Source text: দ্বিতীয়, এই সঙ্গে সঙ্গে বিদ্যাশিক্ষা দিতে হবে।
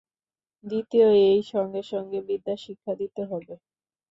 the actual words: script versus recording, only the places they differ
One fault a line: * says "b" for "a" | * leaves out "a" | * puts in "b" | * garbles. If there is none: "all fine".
all fine